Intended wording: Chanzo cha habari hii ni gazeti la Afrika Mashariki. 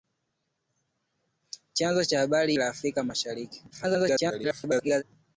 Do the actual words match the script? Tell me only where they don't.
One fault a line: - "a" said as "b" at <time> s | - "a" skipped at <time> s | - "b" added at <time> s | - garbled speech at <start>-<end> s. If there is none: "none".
- "hii ni gazeti" skipped at 2.5 s
- garbled speech at 3.7-5.0 s